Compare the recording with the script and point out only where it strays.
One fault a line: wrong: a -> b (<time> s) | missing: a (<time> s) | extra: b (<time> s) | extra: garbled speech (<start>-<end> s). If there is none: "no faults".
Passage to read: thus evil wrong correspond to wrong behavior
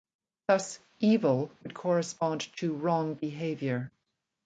wrong: wrong -> would (1.6 s)